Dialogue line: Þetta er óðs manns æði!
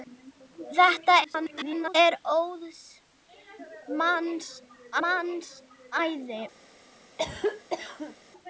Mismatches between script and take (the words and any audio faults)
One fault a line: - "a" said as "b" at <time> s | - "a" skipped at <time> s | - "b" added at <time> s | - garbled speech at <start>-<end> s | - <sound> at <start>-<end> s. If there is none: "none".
- garbled speech at 1.2-2.0 s
- "manns" added at 5.1 s
- cough at 7.2-8.2 s